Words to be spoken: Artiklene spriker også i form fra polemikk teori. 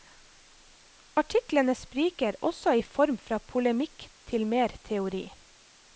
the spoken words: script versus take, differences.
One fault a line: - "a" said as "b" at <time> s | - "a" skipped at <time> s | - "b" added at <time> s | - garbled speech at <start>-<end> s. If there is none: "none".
- "til mer" added at 4.3 s